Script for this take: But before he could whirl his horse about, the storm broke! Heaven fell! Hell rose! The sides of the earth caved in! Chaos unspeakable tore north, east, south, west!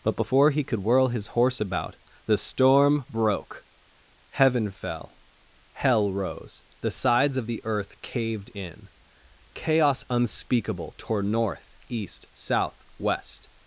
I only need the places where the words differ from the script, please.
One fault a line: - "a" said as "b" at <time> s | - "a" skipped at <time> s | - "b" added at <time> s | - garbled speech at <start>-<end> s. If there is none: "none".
none